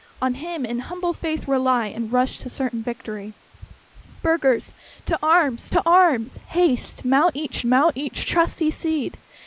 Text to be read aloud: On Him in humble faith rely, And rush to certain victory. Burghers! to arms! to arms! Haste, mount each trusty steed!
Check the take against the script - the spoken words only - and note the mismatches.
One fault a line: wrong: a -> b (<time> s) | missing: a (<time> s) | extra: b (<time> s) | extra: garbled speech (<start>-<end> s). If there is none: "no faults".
extra: mount each (7.6 s)